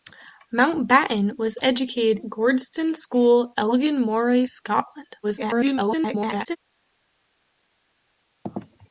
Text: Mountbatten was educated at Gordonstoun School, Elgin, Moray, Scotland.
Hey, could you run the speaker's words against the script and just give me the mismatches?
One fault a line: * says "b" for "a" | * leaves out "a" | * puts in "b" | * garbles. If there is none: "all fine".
* leaves out "at"
* garbles